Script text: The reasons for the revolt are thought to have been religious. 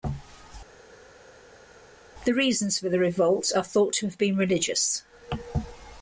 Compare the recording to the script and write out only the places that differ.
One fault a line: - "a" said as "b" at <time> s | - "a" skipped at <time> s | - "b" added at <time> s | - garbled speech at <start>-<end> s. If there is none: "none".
none